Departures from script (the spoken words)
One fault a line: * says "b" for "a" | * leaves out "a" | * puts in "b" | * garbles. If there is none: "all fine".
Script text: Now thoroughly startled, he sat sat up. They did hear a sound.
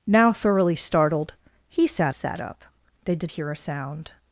all fine